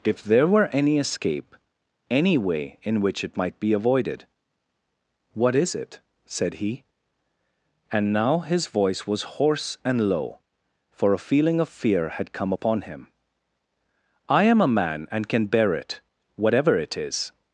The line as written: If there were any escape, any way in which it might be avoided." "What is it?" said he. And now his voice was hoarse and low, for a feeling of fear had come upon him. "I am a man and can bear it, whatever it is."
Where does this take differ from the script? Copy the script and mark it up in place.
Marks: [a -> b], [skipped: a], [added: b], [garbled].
If there were any escape, any way in which it might be avoided." "What is it?" said he. And now his voice was hoarse and low, for a feeling of fear had come upon him. "I am a man and can bear it, whatever it is."